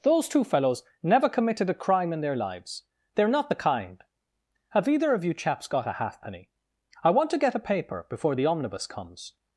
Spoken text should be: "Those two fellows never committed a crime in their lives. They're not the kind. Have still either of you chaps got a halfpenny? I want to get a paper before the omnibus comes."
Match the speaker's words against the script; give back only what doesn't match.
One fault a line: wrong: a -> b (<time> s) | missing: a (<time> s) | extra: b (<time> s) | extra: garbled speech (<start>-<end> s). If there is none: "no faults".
missing: still (4.9 s)